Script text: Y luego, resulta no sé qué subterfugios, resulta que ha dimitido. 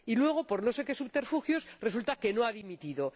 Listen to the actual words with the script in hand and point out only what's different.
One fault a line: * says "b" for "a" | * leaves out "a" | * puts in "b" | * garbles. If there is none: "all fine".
* says "por" for "resulta"
* puts in "no"